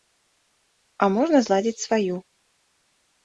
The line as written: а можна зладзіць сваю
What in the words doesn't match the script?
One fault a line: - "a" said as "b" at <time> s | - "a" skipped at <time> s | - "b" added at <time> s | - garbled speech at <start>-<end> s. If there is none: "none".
none